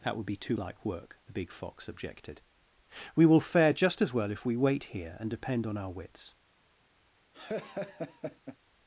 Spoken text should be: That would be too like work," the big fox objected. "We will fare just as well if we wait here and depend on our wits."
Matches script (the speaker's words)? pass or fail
pass